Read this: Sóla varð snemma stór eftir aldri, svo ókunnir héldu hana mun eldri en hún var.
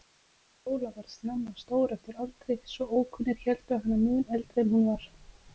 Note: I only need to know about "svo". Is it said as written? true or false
true